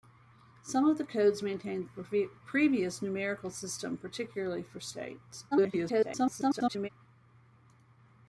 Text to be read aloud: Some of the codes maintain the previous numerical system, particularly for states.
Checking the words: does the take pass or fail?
fail